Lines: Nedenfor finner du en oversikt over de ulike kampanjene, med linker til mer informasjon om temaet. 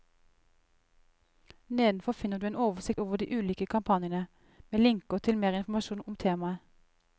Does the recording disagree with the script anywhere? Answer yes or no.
no